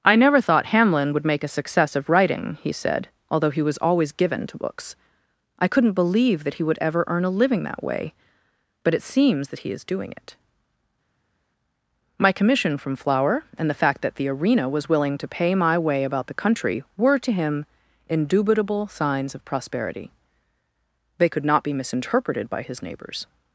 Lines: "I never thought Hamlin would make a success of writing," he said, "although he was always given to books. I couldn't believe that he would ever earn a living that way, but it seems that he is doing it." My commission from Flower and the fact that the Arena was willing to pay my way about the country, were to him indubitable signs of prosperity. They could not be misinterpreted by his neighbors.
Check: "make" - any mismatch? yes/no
no